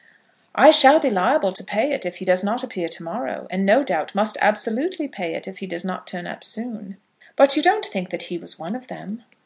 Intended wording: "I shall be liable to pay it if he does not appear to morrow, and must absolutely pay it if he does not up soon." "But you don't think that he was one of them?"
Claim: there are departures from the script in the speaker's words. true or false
true